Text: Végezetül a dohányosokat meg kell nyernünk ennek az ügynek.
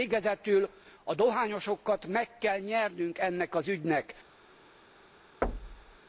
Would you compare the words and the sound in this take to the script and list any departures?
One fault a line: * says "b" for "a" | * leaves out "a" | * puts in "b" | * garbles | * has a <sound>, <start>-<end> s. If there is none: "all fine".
* has a thud, 5.4-6.0 s